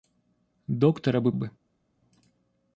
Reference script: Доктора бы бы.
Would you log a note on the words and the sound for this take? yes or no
no